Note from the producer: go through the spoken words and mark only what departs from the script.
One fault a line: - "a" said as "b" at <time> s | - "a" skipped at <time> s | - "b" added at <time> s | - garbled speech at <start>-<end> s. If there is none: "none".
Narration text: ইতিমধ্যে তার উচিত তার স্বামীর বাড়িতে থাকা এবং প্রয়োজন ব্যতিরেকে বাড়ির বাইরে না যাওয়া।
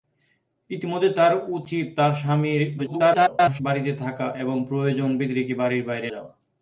- garbled speech at 2.8-3.6 s
- "না" skipped at 6.1 s